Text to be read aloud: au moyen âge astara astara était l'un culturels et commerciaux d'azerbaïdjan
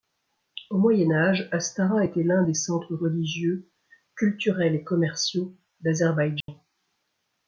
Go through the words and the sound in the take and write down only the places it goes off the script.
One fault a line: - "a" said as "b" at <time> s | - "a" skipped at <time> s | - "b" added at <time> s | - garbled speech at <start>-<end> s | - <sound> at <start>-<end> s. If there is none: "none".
- "astara" skipped at 2.0 s
- "des centres religieux" added at 2.4 s
- dropout at 6.4-6.5 s